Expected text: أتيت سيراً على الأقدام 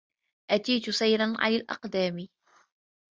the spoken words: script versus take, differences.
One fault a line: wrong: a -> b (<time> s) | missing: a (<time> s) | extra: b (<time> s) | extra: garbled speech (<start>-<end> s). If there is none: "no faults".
no faults